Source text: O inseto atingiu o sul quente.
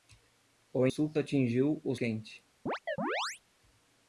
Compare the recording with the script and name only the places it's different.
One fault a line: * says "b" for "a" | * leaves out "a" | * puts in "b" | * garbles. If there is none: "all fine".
* says "sul" for "inseto"
* leaves out "sul"